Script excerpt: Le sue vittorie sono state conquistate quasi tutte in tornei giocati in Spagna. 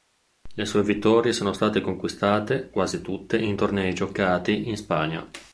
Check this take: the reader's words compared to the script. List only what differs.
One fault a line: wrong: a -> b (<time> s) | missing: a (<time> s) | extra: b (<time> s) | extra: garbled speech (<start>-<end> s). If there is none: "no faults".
no faults